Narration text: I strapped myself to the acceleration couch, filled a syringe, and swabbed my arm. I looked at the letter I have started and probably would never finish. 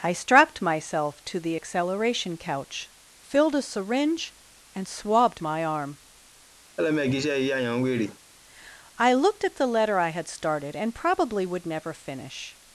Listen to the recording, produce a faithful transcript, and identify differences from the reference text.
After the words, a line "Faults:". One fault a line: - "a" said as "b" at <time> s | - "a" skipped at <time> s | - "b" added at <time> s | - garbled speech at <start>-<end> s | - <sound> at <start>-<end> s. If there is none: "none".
I strapped myself to the acceleration couch, filled a syringe, and swabbed my arm. I looked at the letter I had started and probably would never finish.
Faults:
- laugh at 6.8-8.2 s
- "have" said as "had" at 10.1 s